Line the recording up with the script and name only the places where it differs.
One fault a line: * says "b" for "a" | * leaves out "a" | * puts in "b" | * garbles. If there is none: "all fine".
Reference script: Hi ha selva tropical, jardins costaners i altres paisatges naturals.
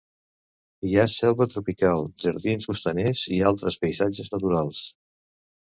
all fine